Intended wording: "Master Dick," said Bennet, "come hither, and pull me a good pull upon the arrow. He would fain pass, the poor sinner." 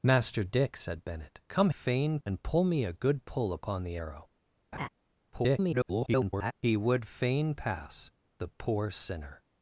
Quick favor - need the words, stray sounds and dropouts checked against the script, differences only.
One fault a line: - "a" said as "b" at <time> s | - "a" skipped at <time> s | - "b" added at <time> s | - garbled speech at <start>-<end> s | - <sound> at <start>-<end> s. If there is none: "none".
- "hither" said as "fain" at 1.7 s
- laugh at 4.7-4.9 s
- garbled speech at 5.3-6.5 s